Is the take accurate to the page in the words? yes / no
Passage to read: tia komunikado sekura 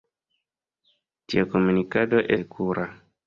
yes